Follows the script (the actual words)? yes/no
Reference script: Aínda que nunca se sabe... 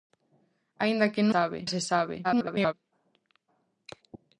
no